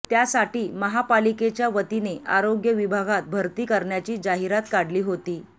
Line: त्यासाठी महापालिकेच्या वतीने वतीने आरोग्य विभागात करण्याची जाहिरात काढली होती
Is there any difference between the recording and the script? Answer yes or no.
yes